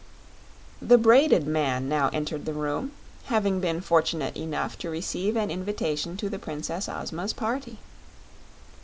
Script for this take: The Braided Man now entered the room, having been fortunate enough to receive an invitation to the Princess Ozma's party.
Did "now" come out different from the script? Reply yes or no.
no